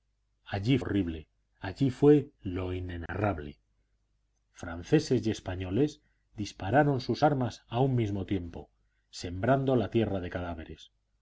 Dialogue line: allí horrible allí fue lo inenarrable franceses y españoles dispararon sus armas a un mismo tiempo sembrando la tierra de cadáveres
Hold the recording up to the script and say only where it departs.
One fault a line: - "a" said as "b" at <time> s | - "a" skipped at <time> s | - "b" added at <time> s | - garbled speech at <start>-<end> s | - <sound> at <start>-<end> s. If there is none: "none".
- dropout at 3.1-3.1 s